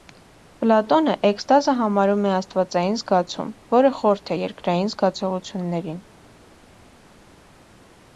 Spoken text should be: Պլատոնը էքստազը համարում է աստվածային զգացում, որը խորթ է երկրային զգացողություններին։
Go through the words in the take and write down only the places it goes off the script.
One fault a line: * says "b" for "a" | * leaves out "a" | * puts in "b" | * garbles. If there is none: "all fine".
all fine